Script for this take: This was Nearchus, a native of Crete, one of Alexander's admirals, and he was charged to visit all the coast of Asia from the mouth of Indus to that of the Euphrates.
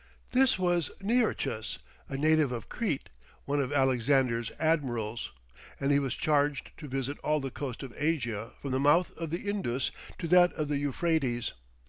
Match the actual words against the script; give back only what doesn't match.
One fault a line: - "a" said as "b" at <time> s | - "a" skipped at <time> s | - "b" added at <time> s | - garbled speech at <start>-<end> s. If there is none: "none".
- "the" added at 9.3 s